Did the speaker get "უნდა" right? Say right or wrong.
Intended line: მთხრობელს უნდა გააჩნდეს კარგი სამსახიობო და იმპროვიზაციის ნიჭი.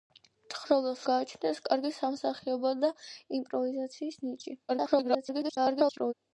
wrong